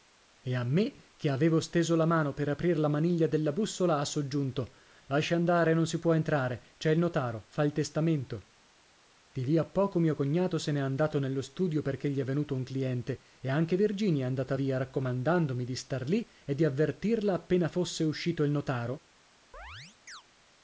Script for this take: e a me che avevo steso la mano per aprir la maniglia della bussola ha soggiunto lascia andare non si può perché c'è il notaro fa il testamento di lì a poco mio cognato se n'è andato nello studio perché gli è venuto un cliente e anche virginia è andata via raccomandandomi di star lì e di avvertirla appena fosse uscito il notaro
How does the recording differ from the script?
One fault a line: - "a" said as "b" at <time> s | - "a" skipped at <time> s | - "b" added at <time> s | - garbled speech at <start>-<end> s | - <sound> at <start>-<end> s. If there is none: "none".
- "perché" said as "entrare" at 6.1 s
- chirp at 19.5-20.2 s